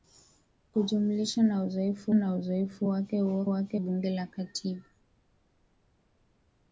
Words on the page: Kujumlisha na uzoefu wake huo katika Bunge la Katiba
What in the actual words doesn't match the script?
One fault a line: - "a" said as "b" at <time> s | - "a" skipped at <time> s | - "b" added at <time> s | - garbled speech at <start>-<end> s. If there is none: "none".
- "na uzoefu" added at 2.1 s
- "katika" said as "wake" at 3.5 s